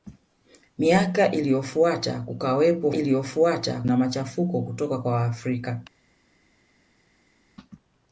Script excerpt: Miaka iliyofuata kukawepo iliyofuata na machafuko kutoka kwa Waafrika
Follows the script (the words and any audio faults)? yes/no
yes